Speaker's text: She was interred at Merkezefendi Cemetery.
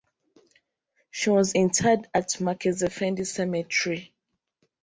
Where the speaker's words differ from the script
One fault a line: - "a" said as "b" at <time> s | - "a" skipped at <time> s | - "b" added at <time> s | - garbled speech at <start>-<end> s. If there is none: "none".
none